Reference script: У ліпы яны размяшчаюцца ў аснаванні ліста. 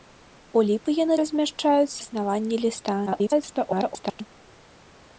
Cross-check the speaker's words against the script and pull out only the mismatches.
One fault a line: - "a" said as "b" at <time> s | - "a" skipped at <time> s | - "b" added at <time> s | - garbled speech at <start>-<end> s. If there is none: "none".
- "ў" skipped at 2.0 s
- garbled speech at 3.1-4.2 s